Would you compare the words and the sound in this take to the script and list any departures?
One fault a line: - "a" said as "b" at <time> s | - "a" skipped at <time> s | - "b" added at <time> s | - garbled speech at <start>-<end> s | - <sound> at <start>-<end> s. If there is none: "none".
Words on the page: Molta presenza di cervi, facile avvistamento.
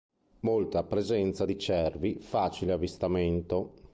none